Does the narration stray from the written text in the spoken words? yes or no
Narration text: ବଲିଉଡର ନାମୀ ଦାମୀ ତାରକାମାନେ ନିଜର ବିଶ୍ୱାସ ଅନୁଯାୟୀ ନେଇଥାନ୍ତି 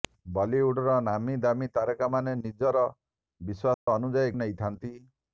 no